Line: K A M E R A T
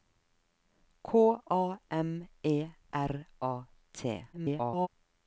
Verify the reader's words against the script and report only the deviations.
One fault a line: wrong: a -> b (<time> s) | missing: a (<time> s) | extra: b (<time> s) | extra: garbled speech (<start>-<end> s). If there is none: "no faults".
extra: garbled speech (4.3-4.9 s)